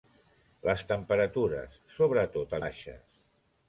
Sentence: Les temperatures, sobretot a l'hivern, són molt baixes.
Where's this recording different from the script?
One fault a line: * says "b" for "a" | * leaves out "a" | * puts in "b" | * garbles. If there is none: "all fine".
* leaves out "l'hivern són molt"